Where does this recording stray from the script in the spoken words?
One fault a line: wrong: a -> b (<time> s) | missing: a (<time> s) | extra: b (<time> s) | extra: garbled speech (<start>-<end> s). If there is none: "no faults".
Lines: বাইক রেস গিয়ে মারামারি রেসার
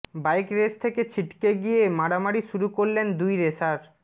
extra: থেকে ছিটকে (0.8 s)
extra: শুরু করলেন দুই (2.5 s)